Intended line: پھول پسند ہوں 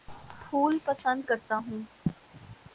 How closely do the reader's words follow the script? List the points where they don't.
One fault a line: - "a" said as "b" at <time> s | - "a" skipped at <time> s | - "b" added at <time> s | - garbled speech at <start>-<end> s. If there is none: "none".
- "کرتا" added at 1.3 s